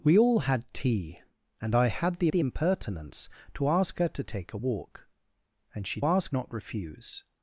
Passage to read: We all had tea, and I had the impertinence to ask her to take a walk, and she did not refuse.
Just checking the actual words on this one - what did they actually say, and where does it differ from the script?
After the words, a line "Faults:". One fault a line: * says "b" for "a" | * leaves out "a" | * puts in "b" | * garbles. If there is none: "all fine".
We all had tea, and I had the the impertinence to ask her to take a walk, and she ask not refuse.
Faults:
* puts in "the"
* says "ask" for "did"